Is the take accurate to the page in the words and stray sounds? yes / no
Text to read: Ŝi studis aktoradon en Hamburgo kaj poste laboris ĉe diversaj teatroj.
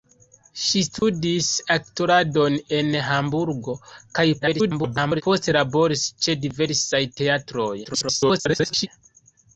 no